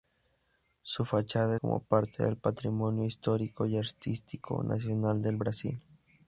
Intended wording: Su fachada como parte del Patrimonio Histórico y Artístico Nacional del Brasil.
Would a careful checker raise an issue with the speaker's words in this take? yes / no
no